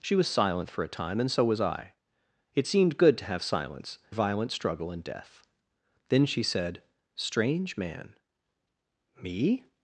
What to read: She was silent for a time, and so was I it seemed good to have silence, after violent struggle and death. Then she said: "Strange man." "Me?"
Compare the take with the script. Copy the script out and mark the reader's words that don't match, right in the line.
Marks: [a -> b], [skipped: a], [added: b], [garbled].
She was silent for a time, and so was I it seemed good to have silence, [skipped: after] violent struggle and death. Then she said: "Strange man." "Me?"